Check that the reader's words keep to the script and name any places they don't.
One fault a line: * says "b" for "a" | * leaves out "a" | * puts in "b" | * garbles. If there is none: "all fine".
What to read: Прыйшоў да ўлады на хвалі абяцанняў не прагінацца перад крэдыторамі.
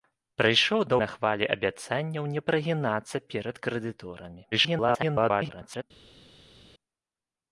* leaves out "ўлады"
* garbles